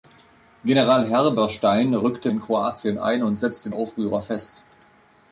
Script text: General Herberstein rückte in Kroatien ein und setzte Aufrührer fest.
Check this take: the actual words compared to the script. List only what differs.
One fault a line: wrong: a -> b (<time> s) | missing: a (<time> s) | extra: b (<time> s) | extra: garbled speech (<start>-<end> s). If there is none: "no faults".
no faults